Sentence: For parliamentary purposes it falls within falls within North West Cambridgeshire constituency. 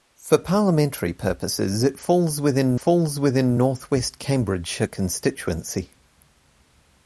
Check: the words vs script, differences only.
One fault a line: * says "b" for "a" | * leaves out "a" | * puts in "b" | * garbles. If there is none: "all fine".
all fine